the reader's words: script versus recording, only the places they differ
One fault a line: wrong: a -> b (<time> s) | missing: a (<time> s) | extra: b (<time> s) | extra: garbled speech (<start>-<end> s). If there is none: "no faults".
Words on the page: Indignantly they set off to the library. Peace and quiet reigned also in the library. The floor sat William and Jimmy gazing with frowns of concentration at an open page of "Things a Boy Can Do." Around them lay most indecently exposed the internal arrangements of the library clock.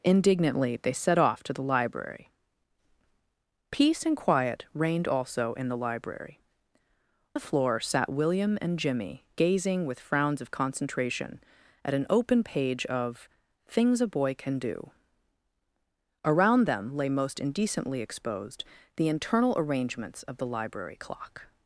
no faults